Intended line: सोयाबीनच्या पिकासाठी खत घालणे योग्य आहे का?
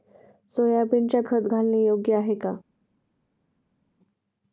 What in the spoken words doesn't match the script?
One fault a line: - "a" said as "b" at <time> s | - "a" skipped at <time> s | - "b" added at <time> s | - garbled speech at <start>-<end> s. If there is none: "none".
- "पिकासाठी" skipped at 1.2 s